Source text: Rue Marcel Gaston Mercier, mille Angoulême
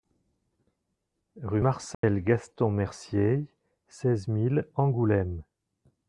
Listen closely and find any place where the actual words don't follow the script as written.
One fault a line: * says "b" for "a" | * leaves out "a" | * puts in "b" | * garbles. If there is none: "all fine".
* puts in "seize"